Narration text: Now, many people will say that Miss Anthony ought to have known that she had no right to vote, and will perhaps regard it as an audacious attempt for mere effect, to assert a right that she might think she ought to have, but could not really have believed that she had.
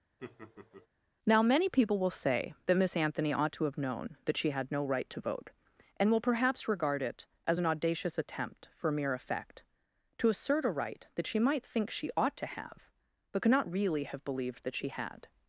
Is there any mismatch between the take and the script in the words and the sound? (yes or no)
yes